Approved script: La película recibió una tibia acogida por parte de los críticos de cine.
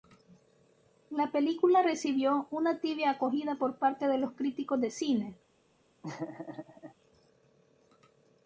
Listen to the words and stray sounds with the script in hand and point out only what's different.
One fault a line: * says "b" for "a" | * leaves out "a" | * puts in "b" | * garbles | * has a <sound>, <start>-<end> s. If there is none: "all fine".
* has a laugh, 6.0-6.9 s